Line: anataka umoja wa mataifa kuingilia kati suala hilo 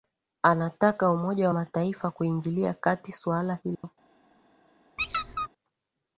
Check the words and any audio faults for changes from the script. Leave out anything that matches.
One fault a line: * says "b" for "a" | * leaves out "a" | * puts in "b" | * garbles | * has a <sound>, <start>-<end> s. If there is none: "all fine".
* has a dropout, 3.7-3.8 s
* has a squeak, 5.0-5.5 s